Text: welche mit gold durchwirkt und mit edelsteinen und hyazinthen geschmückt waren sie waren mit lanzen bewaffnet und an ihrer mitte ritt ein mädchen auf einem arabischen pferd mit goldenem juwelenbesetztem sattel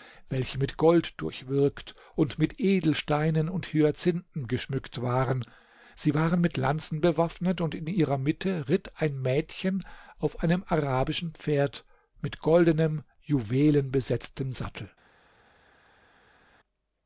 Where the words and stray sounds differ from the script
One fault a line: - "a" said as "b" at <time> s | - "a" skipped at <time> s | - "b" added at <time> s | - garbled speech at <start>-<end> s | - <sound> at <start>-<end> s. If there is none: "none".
- "an" said as "in" at 7.7 s